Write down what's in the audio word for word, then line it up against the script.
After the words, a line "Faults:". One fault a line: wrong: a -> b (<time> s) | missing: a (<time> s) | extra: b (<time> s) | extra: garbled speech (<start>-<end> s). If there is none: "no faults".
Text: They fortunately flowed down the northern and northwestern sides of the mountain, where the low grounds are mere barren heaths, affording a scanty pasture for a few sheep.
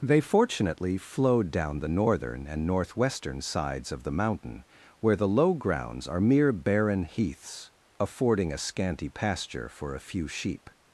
They fortunately flowed down the northern and northwestern sides of the mountain, where the low grounds are mere barren heaths, affording a scanty pasture for a few sheep.
Faults:
no faults